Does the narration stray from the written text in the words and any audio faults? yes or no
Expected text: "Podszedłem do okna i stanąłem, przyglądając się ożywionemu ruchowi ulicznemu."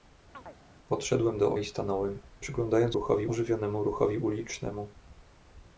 yes